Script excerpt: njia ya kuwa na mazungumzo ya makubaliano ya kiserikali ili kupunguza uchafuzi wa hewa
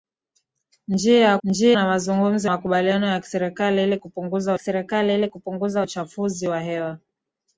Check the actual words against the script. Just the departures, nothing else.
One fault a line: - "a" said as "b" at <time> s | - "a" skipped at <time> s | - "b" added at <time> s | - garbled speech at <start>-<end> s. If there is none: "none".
- "kuwa" said as "njia" at 1.4 s
- "makubaliano" added at 2.4 s
- "makubaliano ya" said as "kiserikali ili kupunguza" at 3.2 s